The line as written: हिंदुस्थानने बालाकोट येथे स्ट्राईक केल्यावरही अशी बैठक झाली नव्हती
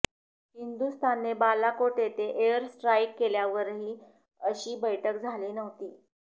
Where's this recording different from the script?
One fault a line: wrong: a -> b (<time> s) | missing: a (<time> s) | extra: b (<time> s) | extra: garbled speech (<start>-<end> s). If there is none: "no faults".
extra: एअर (2.5 s)